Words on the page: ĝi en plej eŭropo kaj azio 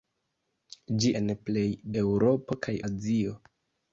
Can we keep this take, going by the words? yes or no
yes